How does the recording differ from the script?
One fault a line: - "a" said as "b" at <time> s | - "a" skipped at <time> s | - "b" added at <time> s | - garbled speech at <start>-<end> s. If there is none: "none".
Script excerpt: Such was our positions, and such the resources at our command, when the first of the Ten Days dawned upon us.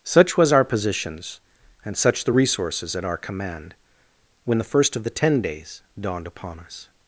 none